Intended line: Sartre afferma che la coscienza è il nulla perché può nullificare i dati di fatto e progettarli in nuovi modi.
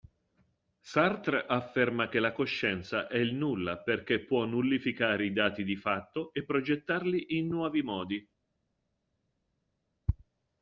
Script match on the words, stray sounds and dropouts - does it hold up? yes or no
yes